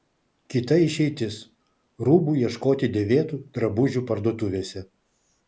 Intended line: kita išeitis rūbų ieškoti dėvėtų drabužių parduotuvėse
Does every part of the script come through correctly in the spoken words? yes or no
yes